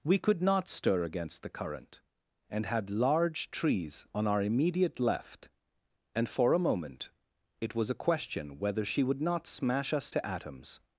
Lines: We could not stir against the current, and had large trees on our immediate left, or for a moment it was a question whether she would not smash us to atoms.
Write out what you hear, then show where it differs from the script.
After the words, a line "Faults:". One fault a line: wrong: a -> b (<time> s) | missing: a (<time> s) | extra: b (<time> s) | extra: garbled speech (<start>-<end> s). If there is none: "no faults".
We could not stir against the current, and had large trees on our immediate left, and for a moment it was a question whether she would not smash us to atoms.
Faults:
wrong: or -> and (6.2 s)